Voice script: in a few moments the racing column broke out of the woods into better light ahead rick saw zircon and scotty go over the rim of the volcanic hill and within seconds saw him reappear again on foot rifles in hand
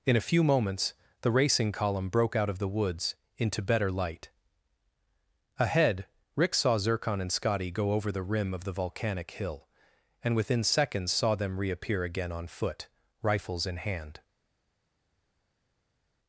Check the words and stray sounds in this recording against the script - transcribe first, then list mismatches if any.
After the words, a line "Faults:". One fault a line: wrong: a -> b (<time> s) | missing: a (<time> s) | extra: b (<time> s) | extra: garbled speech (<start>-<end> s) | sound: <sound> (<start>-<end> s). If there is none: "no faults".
in a few moments the racing column broke out of the woods into better light ahead rick saw zircon and scotty go over the rim of the volcanic hill and within seconds saw them reappear again on foot rifles in hand
Faults:
wrong: him -> them (11.4 s)